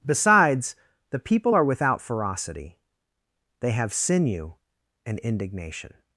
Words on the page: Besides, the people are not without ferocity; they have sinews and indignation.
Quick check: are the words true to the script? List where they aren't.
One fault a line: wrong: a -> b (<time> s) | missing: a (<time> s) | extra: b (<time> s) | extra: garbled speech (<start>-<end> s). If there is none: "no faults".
missing: not (1.6 s)
wrong: sinews -> sinew (3.9 s)